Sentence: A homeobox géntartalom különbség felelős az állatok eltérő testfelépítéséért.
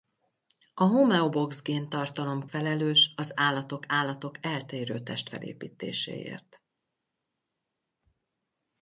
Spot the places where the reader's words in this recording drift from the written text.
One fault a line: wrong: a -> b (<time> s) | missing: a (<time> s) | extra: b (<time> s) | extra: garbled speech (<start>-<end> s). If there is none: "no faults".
missing: különbség (2.5 s)
extra: állatok (3.9 s)